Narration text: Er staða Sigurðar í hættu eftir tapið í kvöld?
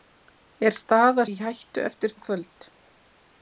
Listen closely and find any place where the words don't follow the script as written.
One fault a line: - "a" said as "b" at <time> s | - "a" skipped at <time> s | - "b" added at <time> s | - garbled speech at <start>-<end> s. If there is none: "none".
- "Sigurðar" skipped at 1.2 s
- "tapið" skipped at 2.2 s